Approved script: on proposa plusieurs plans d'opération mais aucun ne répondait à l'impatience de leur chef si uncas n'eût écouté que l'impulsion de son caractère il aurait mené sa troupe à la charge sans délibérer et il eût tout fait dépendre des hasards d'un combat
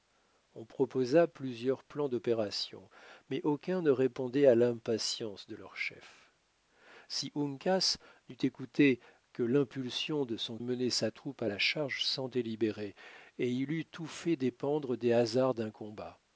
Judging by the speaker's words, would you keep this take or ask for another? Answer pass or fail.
fail